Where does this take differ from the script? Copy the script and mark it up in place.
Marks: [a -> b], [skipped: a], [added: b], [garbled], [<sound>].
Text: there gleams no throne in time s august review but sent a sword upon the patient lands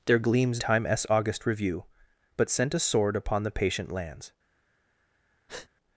there gleams [skipped: no throne in] time s august review but sent a sword upon the patient lands [breath]